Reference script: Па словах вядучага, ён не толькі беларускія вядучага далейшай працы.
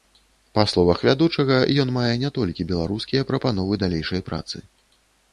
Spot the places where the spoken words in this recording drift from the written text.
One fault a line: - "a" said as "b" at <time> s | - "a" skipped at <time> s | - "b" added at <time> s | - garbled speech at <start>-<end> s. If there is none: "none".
- "мае" added at 2.0 s
- "вядучага" said as "прапановы" at 3.3 s